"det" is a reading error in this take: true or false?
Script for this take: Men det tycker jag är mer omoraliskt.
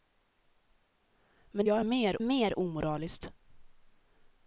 true